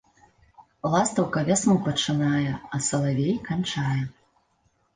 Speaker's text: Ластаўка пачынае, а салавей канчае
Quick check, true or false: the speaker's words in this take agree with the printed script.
false